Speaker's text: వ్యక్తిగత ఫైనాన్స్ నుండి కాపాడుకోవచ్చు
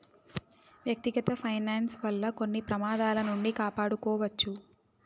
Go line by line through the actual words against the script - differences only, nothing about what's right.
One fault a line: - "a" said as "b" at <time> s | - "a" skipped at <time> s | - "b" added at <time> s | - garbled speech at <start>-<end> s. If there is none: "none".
- "వల్ల కొన్ని ప్రమాదాల" added at 2.0 s